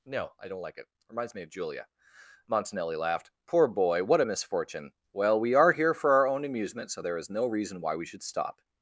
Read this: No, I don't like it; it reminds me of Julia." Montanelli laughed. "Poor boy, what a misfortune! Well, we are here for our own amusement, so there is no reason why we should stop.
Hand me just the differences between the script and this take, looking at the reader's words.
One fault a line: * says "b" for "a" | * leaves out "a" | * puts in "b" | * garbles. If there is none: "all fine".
* leaves out "it"